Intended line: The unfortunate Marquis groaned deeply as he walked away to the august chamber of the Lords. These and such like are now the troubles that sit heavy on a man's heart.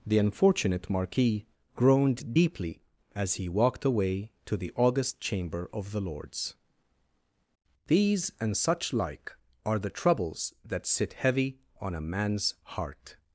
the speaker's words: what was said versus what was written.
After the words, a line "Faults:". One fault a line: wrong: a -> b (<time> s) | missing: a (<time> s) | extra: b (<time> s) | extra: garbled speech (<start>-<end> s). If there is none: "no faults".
The unfortunate Marquis groaned deeply as he walked away to the august chamber of the Lords. These and such like are the troubles that sit heavy on a man's heart.
Faults:
missing: now (9.8 s)